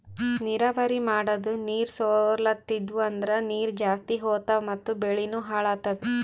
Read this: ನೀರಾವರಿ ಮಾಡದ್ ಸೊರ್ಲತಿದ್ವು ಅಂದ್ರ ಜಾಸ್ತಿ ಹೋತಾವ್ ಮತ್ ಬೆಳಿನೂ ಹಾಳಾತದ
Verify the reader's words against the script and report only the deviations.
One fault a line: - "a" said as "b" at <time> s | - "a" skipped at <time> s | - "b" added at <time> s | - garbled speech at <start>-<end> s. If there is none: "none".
- "ನೀರ್" added at 1.6 s
- "ನೀರ್" added at 3.5 s